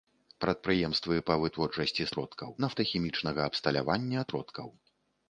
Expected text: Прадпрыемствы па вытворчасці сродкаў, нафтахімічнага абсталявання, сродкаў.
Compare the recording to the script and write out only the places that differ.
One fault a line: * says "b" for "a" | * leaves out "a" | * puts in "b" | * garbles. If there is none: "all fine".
all fine